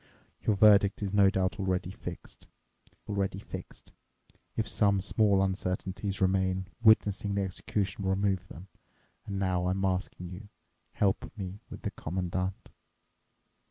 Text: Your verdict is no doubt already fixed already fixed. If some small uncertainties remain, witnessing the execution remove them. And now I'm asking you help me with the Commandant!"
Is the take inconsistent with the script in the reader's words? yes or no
no